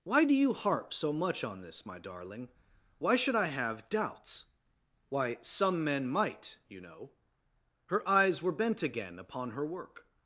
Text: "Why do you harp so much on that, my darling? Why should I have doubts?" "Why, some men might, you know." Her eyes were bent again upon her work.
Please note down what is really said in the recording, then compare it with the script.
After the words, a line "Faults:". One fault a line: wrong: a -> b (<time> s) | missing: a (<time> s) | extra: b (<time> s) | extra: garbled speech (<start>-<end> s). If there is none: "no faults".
"Why do you harp so much on this, my darling? Why should I have doubts?" "Why, some men might, you know." Her eyes were bent again upon her work.
Faults:
wrong: that -> this (1.6 s)